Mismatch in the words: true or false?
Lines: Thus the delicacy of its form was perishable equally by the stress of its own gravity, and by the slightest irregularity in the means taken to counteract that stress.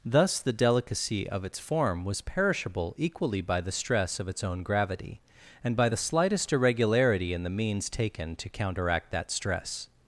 false